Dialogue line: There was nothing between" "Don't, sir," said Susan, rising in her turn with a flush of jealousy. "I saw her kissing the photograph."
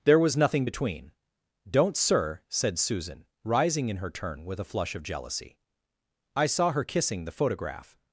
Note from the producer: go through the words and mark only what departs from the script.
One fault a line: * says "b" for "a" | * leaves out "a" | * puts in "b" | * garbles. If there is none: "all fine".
all fine